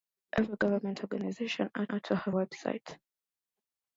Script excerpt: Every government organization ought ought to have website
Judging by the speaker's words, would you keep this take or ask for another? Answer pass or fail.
pass